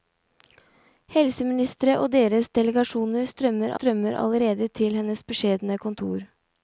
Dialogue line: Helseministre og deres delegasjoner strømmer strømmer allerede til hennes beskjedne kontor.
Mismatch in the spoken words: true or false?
false